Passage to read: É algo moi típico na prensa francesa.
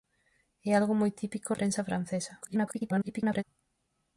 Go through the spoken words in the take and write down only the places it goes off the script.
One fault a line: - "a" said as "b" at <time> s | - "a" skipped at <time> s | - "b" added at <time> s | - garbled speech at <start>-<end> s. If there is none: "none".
- "na" skipped at 1.5 s
- garbled speech at 2.4-3.4 s